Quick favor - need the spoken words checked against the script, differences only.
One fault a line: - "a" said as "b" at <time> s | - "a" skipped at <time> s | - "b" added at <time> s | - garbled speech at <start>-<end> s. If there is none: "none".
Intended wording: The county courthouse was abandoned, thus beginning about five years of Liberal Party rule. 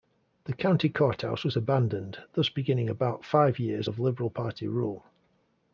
none